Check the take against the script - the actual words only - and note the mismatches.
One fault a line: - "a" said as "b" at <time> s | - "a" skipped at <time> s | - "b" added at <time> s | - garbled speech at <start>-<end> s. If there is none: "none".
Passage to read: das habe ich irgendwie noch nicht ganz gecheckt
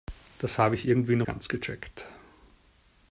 - "nicht" skipped at 1.3 s